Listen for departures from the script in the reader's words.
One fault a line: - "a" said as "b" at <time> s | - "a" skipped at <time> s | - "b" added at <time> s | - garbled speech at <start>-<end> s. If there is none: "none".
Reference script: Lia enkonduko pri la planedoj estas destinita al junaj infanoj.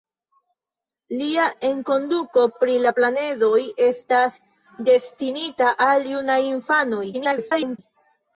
- garbled speech at 7.1-7.8 s